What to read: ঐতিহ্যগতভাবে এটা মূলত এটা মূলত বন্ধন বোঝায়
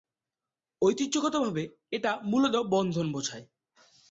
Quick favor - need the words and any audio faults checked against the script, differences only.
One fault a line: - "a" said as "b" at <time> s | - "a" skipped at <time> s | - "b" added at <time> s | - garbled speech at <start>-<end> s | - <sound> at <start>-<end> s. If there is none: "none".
- "এটা মূলত" skipped at 2.5 s